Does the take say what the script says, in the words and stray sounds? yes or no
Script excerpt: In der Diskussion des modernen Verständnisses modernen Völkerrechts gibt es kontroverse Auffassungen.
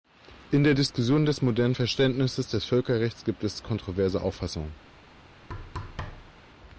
no